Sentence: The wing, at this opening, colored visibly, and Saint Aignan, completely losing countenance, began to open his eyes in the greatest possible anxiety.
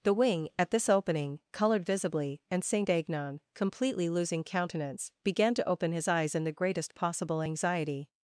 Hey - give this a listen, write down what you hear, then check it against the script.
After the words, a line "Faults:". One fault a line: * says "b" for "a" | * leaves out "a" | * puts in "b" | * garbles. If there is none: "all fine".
The wing, at this opening, colored visibly, and Saint Aignan, completely losing countenance, began to open his eyes in the greatest possible anxiety.
Faults:
all fine